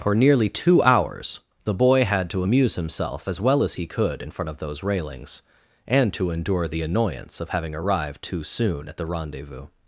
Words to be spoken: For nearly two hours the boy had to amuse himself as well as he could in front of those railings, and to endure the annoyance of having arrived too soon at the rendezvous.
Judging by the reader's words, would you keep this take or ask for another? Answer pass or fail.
pass